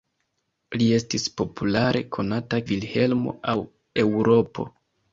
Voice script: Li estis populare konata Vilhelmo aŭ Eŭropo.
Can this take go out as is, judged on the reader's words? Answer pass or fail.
pass